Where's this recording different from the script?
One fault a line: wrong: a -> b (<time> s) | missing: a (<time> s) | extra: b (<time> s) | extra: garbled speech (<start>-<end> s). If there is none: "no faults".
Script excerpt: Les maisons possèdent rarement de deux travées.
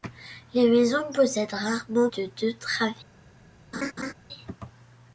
no faults